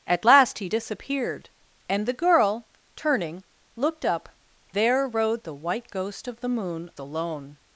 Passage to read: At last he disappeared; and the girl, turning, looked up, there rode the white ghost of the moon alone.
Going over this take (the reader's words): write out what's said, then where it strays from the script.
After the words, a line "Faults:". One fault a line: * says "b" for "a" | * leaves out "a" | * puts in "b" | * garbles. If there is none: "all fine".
At last he disappeared; and the girl, turning, looked up, there rode the white ghost of the moon alone.
Faults:
all fine